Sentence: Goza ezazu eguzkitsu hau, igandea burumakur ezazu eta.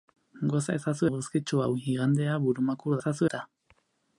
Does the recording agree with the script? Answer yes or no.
yes